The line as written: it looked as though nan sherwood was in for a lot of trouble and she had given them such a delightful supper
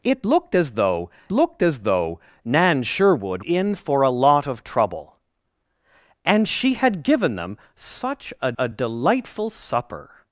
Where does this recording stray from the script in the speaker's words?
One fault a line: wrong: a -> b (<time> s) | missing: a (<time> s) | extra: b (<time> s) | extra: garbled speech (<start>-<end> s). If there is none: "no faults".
extra: looked as though (1.3 s)
missing: was (3.4 s)
extra: a (8.6 s)